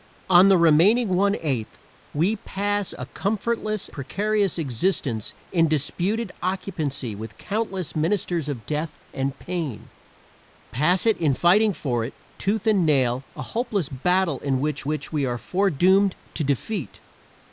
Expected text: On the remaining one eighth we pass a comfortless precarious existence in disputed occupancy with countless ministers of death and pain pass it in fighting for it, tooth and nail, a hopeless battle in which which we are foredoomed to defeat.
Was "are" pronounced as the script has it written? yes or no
yes